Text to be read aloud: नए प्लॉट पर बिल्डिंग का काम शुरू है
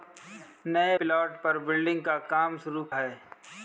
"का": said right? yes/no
yes